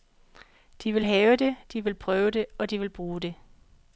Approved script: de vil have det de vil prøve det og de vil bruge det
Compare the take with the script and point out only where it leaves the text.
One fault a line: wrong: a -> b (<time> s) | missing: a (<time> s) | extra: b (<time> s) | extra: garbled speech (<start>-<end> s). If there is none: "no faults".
no faults